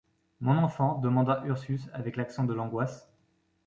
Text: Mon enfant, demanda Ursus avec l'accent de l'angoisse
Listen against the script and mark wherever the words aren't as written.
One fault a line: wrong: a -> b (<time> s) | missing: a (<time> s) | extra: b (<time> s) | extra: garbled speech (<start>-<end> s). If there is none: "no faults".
no faults